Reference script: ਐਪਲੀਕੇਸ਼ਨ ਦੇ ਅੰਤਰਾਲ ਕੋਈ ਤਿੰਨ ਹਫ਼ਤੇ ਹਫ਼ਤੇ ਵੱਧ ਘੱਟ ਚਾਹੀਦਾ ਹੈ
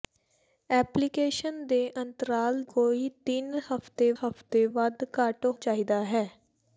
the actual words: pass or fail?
pass